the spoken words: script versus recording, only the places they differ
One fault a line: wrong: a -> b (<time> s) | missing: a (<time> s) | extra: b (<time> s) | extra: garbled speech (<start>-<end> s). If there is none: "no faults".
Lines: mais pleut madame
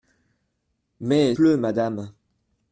no faults